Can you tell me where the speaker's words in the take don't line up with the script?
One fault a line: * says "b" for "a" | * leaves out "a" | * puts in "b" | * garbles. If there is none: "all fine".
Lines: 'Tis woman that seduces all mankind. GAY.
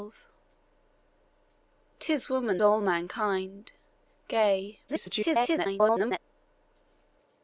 * leaves out "that seduces"
* garbles